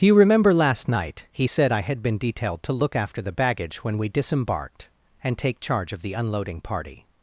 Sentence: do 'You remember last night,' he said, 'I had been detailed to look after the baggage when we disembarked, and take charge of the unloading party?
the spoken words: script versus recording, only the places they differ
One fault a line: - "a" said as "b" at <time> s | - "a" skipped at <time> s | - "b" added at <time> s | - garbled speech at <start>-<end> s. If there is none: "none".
none